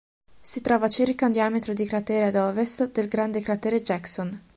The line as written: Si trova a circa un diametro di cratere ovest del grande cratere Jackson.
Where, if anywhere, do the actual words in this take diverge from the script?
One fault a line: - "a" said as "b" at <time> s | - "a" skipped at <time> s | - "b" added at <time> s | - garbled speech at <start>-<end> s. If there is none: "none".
- "ad" added at 2.3 s